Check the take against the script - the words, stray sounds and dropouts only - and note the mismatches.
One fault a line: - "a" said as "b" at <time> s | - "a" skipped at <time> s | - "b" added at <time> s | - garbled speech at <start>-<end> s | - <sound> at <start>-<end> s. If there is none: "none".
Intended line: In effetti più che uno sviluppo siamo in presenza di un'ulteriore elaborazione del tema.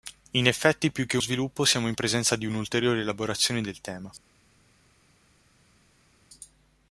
- "uno" skipped at 1.2 s